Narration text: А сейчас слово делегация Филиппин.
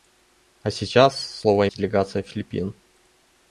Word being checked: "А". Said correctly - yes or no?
yes